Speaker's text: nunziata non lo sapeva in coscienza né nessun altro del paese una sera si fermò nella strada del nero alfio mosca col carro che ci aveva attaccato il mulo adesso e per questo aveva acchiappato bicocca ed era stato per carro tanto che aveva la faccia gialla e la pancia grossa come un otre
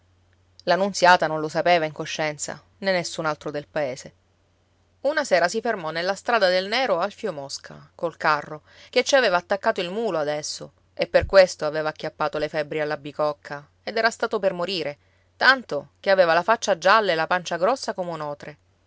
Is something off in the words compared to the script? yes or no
yes